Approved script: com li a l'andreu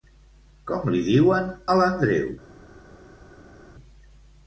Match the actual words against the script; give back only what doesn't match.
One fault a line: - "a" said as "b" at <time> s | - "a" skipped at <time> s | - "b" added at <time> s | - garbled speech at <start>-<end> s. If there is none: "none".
- "diuen" added at 1.1 s